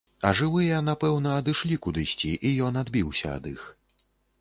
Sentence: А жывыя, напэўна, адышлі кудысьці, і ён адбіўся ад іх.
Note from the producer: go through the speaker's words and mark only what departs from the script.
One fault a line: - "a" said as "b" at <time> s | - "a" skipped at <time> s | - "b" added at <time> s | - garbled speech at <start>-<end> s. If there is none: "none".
none